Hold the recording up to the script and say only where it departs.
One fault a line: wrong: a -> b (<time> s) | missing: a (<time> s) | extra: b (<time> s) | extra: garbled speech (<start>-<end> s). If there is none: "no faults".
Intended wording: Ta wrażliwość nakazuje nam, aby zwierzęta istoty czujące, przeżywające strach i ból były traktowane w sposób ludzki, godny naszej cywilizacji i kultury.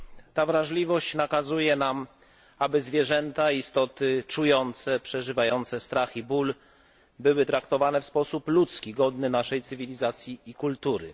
no faults